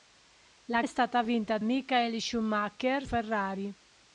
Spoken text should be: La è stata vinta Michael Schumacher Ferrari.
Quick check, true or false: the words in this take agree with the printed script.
true